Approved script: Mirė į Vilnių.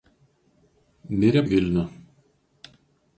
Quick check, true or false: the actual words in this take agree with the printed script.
true